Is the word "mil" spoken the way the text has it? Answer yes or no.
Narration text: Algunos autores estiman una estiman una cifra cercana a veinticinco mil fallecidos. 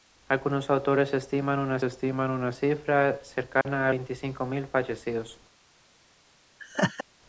yes